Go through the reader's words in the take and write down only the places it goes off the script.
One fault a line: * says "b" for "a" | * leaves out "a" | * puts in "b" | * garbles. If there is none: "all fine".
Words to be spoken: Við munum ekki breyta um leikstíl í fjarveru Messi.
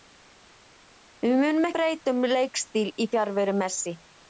* leaves out "ekki"